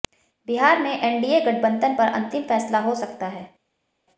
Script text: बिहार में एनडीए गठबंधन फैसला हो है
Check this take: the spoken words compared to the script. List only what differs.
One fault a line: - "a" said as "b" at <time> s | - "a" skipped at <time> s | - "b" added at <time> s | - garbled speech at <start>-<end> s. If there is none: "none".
- "पर अंतिम" added at 1.9 s
- "सकता" added at 2.9 s